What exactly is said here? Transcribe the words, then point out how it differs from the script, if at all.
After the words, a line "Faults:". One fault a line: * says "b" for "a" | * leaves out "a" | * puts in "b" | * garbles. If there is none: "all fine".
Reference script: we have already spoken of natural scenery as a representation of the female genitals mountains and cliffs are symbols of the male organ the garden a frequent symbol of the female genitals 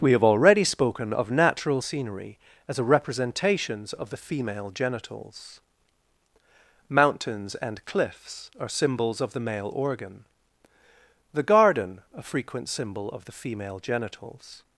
we have already spoken of natural scenery as a representations of the female genitals mountains and cliffs are symbols of the male organ the garden a frequent symbol of the female genitals
Faults:
* says "representations" for "representation"